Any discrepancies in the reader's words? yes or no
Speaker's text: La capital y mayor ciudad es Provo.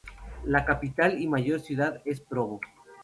no